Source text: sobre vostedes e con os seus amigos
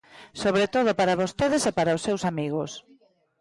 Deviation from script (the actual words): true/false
true